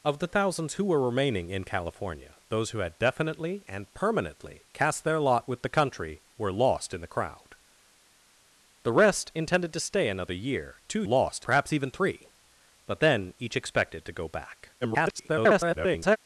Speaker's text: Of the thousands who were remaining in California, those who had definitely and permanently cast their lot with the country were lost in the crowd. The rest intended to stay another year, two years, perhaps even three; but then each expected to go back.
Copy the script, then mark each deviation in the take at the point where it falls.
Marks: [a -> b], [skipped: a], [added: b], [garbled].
Of the thousands who were remaining in California, those who had definitely and permanently cast their lot with the country were lost in the crowd. The rest intended to stay another year, two [years, -> lost] perhaps even three; but then each expected to go back. [garbled]